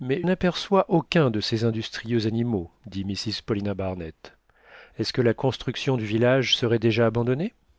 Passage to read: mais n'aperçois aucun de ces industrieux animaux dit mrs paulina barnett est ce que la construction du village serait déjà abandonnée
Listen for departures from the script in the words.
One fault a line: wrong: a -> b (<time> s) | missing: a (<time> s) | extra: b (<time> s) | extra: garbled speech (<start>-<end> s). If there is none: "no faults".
no faults